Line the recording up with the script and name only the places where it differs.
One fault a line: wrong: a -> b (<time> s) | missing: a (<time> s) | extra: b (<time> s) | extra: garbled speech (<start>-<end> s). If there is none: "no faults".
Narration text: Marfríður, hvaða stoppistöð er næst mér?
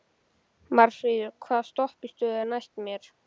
no faults